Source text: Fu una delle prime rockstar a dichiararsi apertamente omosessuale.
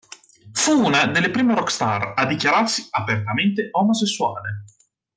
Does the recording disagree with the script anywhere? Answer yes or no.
no